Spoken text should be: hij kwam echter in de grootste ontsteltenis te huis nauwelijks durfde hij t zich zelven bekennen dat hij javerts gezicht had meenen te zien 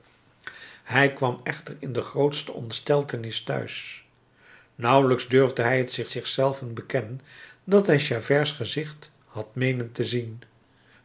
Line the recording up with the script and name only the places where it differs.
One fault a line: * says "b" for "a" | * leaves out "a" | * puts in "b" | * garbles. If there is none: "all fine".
* puts in "zich"